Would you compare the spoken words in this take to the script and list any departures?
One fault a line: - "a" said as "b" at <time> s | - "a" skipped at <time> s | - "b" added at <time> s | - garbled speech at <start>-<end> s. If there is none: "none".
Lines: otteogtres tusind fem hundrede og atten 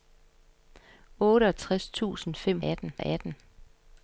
- "hundrede" said as "atten" at 2.6 s